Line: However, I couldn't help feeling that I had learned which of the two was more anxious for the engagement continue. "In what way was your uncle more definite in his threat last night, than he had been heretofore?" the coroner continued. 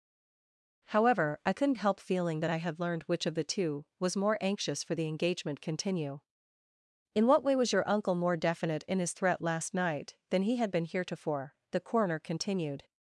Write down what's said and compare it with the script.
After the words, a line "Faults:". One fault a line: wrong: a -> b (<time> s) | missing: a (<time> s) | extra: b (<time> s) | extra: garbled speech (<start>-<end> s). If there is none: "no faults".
However, I couldn't help feeling that I had learned which of the two was more anxious for the engagement continue. "In what way was your uncle more definite in his threat last night, than he had been heretofore?" the coroner continued.
Faults:
no faults